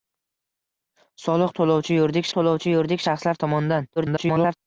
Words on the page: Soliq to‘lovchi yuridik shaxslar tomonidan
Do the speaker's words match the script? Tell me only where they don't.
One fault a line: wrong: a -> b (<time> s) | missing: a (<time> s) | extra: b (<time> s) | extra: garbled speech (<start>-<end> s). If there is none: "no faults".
extra: to‘lovchi yuridik (2.4 s)
extra: garbled speech (4.0-4.6 s)